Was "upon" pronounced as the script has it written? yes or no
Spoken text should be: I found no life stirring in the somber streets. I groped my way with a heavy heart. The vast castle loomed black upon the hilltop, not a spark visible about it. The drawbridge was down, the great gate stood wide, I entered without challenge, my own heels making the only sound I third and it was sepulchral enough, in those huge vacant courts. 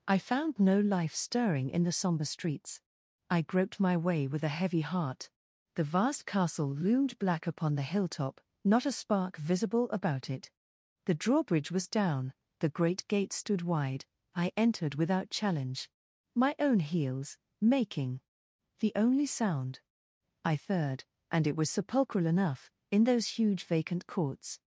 yes